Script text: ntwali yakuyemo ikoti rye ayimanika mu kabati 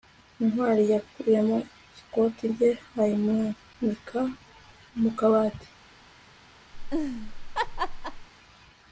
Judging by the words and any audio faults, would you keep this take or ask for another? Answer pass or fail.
fail